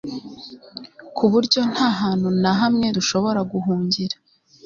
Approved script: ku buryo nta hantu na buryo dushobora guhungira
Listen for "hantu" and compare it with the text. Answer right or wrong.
right